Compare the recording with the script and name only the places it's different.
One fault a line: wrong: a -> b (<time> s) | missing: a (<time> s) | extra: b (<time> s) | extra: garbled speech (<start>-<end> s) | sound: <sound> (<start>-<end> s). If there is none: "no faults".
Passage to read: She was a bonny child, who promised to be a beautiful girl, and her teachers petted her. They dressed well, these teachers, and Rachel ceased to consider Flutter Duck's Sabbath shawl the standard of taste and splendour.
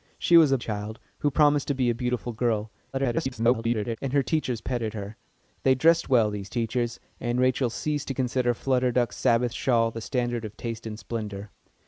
missing: bonny (0.6 s)
extra: garbled speech (2.9-4.0 s)